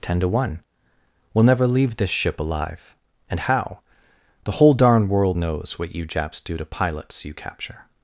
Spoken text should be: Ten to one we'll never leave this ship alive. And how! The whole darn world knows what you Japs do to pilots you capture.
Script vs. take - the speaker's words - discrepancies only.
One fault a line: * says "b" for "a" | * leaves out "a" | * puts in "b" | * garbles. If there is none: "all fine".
all fine